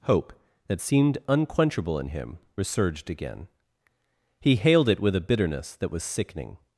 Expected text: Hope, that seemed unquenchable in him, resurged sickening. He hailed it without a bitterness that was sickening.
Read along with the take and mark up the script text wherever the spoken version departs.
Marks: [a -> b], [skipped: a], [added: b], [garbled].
Hope, that seemed unquenchable in him, resurged [sickening. -> again] He hailed it [without -> with] a bitterness that was sickening.